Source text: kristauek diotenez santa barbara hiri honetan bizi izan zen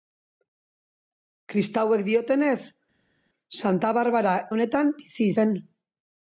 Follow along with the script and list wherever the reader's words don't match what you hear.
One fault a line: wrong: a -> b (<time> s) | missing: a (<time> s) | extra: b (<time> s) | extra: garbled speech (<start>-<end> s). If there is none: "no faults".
missing: hiri (4.4 s)
missing: izan (5.3 s)